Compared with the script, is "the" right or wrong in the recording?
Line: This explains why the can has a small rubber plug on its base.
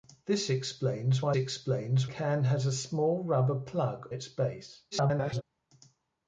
wrong